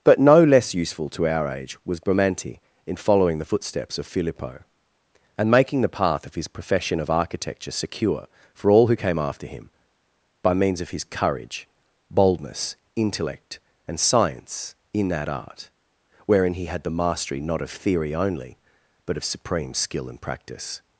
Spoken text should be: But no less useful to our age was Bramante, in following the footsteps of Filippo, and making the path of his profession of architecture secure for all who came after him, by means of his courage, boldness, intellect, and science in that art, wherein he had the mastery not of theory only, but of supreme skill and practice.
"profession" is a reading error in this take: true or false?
false